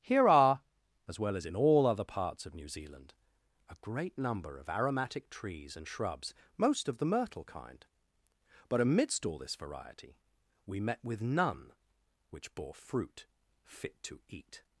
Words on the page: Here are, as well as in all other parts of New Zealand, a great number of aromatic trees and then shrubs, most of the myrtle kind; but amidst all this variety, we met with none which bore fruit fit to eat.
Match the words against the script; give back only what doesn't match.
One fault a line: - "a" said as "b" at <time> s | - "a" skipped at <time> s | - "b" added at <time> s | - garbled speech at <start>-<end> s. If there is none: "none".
- "then" skipped at 5.9 s